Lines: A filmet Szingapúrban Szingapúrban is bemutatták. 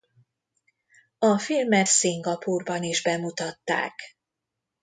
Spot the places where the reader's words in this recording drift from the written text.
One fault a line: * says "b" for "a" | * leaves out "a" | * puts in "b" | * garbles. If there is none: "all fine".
* leaves out "Szingapúrban"